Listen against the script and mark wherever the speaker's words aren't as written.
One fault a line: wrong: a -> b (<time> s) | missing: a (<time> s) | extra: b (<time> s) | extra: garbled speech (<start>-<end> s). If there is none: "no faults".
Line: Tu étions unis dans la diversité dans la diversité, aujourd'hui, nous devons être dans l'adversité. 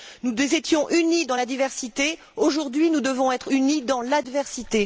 wrong: Tu -> Nous (0.2 s)
missing: dans la diversité (2.2 s)
extra: unis (3.5 s)